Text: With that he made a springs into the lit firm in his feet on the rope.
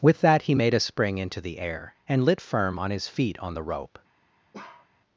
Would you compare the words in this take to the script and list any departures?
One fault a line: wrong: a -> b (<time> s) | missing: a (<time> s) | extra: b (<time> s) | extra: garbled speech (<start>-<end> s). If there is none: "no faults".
wrong: springs -> spring (0.8 s)
extra: air and (1.6 s)
wrong: in -> on (2.8 s)